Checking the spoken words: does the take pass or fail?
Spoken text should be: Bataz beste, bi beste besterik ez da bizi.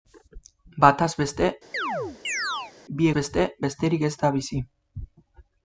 pass